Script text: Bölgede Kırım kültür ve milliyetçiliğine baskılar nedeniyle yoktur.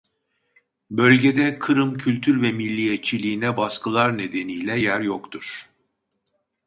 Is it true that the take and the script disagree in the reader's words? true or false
true